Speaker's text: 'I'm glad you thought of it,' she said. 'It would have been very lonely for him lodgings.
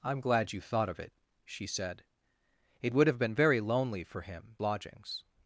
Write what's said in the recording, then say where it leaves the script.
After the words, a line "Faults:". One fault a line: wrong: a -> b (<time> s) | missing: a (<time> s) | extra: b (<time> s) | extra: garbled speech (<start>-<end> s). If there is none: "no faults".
'I'm glad you thought of it,' she said. 'It would have been very lonely for him lodgings.
Faults:
no faults